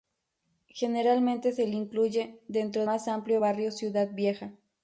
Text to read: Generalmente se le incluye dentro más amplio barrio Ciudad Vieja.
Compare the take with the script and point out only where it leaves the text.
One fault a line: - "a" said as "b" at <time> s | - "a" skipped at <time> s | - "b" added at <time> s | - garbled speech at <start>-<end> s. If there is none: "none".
none